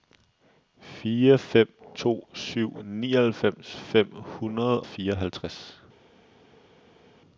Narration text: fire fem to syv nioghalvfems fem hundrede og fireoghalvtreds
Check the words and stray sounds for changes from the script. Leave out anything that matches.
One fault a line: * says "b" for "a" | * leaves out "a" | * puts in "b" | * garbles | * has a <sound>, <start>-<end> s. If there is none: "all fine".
* leaves out "og"